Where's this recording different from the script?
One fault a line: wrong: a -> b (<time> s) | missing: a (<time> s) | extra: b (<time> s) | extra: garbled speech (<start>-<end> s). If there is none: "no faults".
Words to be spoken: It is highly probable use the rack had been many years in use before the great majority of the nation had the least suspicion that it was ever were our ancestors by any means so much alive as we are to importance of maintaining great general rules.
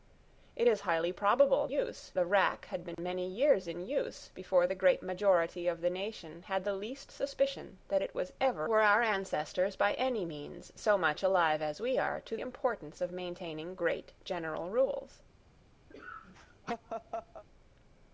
no faults